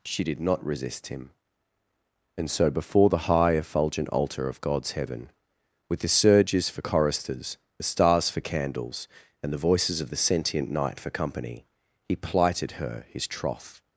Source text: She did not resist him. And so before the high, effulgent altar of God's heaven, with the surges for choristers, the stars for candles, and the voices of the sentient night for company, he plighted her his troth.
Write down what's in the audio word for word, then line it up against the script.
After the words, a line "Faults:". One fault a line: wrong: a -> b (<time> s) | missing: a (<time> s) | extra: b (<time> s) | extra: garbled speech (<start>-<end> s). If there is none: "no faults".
She did not resist him. And so before the high, effulgent altar of God's heaven, with the surges for choristers, the stars for candles, and the voices of the sentient night for company, he plighted her his troth.
Faults:
no faults